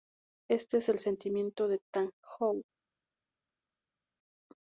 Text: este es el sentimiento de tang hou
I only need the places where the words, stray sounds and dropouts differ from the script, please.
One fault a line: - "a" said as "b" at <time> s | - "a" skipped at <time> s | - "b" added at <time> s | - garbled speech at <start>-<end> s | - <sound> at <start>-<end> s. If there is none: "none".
none